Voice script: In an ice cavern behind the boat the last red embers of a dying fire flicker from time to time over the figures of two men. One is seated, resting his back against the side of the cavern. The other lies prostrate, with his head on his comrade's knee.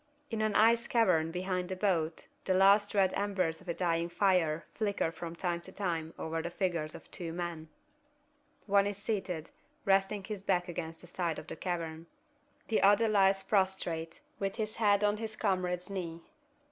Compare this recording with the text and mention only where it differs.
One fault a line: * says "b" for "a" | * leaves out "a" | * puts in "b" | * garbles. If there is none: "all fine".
all fine